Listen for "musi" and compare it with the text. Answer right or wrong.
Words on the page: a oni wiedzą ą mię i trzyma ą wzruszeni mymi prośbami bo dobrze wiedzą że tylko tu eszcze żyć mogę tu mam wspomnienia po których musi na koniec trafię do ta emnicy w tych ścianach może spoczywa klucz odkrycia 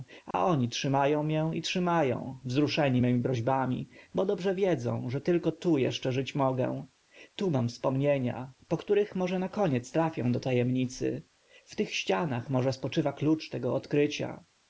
wrong